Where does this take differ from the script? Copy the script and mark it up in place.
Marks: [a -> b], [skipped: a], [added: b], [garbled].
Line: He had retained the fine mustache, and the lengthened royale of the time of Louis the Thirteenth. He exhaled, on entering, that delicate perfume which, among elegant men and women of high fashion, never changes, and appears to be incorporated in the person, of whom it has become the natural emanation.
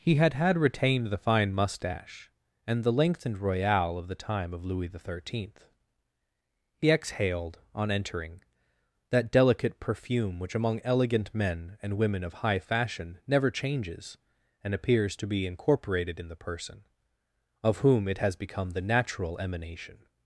He had [added: had] retained the fine mustache, and the lengthened royale of the time of Louis the Thirteenth. He exhaled, on entering, that delicate perfume which, among elegant men and women of high fashion, never changes, and appears to be incorporated in the person, of whom it has become the natural emanation.